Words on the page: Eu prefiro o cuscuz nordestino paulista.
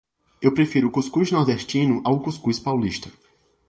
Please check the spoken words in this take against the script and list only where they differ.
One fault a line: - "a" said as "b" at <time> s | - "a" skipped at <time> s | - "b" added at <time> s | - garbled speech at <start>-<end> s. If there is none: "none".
- "ao cuscuz" added at 2.0 s